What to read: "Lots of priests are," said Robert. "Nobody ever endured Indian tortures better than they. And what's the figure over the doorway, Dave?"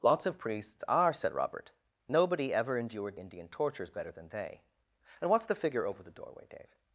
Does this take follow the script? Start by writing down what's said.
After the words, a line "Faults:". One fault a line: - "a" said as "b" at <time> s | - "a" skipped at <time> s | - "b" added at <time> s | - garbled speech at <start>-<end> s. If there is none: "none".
"Lots of priests are," said Robert. "Nobody ever endured Indian tortures better than they. And what's the figure over the doorway, Dave?"
Faults:
none